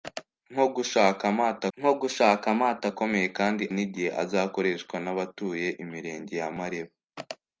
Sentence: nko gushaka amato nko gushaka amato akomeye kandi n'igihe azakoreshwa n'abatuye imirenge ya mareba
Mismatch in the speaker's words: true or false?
false